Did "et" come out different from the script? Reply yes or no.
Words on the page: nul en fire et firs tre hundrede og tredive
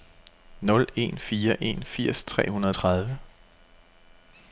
yes